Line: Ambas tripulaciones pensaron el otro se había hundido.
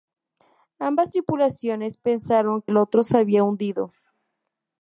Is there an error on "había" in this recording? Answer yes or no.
no